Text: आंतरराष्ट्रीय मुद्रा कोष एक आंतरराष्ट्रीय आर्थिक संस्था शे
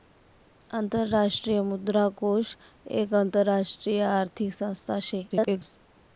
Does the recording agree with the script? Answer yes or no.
no